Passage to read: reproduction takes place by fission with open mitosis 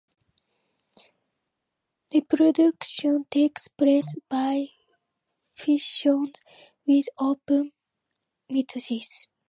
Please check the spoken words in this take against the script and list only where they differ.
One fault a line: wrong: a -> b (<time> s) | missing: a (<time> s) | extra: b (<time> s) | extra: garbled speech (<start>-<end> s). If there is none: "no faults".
no faults